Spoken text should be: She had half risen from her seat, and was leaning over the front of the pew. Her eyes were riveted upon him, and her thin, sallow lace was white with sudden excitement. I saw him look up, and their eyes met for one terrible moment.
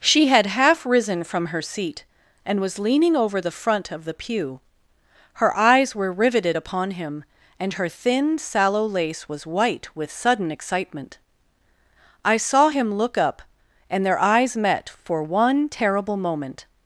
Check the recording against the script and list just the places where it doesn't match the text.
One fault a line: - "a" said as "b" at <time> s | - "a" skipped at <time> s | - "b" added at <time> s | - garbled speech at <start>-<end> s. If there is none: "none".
none